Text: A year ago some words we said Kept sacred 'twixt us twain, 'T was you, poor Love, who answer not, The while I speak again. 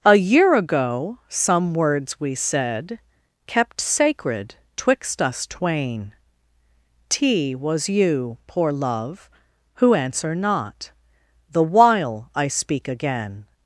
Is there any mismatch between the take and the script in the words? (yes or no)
no